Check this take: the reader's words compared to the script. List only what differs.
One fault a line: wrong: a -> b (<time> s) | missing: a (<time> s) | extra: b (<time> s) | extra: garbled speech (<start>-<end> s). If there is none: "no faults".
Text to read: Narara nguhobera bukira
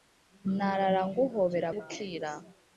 no faults